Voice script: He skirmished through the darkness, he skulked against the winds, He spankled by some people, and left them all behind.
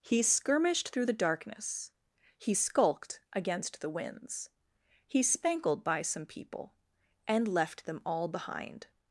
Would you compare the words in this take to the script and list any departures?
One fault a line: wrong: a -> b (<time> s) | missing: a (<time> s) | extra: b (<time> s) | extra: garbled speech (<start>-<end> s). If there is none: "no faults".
no faults